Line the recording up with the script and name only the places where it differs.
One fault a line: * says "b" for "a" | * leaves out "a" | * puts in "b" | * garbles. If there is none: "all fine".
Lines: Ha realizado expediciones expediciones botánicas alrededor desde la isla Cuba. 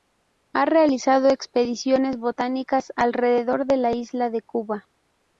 * leaves out "expediciones"
* says "de" for "desde"
* puts in "de"